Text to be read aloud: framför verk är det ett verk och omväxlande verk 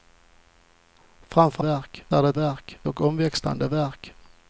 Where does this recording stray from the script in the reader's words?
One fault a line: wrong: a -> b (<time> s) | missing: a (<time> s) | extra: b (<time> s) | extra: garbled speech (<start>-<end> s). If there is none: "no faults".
no faults